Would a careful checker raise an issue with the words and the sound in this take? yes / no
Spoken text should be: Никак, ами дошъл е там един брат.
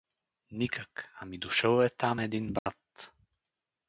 yes